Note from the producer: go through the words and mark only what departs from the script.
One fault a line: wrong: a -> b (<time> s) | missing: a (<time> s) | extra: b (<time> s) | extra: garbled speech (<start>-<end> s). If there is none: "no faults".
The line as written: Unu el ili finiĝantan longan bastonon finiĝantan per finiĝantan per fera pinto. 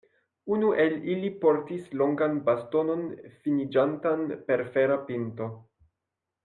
wrong: finiĝantan -> portis (1.4 s)
missing: finiĝantan per (4.7 s)